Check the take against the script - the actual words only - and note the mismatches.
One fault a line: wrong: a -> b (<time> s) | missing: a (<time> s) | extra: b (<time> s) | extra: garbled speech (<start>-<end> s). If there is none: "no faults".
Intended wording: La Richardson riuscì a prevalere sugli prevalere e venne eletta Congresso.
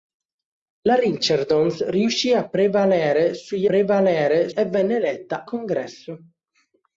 no faults